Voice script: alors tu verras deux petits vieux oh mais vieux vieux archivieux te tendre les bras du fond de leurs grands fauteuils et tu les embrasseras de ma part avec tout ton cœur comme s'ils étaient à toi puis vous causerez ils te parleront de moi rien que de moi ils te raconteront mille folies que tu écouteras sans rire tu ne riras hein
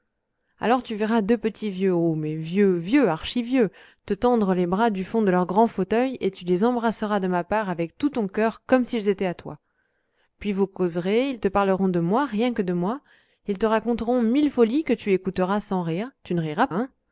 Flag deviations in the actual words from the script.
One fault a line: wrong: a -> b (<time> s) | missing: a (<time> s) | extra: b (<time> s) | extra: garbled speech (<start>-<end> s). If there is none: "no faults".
no faults